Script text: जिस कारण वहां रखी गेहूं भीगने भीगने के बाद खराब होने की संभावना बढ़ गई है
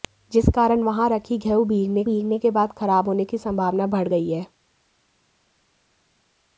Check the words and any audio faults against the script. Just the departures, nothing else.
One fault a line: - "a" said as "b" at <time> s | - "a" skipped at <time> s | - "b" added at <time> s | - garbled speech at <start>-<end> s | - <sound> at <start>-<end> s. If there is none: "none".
none